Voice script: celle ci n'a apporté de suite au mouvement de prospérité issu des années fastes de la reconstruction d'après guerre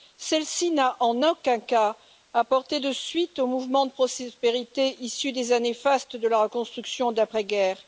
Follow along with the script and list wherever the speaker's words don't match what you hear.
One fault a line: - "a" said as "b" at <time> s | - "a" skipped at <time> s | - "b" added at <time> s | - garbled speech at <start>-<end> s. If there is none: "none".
- "en aucun cas" added at 1.0 s